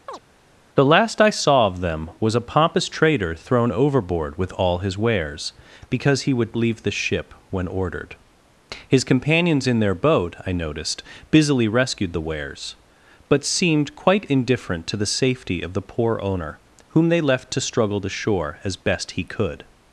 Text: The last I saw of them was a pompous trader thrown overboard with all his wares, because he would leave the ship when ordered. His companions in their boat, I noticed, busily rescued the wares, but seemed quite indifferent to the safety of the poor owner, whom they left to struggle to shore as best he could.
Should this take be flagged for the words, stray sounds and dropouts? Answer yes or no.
yes